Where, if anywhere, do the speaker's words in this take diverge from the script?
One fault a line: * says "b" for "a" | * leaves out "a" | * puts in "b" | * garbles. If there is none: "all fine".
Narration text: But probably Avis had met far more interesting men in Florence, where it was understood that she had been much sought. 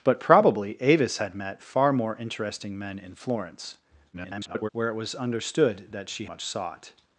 * garbles
* leaves out "had been"